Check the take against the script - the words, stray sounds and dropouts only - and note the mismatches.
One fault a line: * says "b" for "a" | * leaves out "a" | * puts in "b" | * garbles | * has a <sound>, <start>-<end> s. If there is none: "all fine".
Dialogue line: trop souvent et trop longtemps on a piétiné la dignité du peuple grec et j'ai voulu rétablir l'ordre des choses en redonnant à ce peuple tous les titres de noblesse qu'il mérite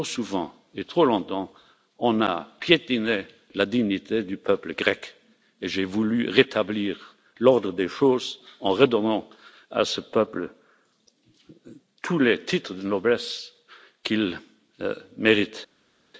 all fine